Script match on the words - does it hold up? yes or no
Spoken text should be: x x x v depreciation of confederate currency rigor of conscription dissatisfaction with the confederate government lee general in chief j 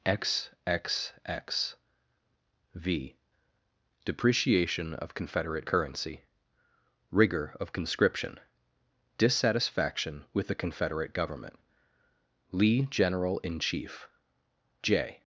yes